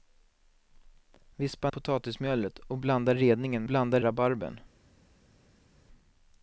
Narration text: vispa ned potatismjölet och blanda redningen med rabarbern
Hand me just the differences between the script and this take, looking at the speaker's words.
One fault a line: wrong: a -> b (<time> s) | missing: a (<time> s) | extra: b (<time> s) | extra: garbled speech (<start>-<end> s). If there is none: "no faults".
missing: ned (1.7 s)
wrong: med -> blanda (3.6 s)